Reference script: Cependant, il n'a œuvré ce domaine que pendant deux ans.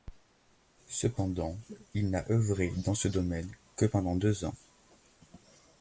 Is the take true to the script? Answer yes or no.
no